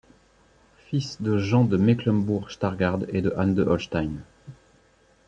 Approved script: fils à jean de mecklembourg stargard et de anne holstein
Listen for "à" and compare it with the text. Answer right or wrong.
wrong